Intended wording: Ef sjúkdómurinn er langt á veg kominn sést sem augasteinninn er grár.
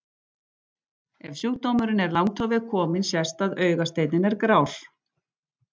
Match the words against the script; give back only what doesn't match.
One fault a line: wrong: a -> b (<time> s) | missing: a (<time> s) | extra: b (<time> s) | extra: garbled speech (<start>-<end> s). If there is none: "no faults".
wrong: sem -> að (3.5 s)